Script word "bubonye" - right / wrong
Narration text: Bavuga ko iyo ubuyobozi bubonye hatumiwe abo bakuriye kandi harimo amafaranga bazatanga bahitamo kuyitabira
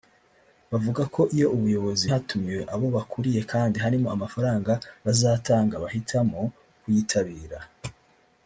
wrong